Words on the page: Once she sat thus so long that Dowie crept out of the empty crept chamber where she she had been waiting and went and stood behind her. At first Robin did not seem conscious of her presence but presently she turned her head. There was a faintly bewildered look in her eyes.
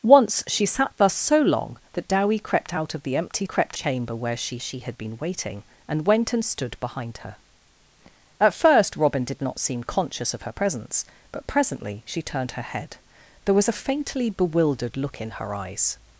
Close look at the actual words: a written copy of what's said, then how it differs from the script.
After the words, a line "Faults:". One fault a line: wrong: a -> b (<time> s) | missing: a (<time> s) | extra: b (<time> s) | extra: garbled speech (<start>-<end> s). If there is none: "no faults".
Once she sat thus so long that Dowie crept out of the empty crept chamber where she she had been waiting and went and stood behind her. At first Robin did not seem conscious of her presence but presently she turned her head. There was a faintly bewildered look in her eyes.
Faults:
no faults